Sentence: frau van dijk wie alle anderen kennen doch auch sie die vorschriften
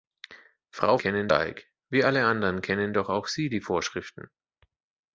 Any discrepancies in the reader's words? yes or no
yes